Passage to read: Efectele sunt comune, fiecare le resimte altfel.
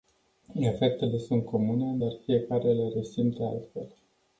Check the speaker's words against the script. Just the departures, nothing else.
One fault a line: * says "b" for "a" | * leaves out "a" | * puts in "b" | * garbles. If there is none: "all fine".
* puts in "dar"